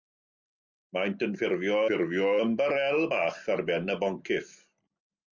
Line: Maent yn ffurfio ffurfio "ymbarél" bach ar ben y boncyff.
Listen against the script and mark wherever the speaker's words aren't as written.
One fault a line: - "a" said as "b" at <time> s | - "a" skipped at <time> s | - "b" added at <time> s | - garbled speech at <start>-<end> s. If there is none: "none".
none